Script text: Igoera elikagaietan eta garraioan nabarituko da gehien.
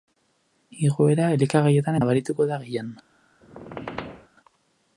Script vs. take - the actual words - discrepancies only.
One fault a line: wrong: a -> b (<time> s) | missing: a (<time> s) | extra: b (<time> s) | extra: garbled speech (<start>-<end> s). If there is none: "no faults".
missing: eta garraioan (2.0 s)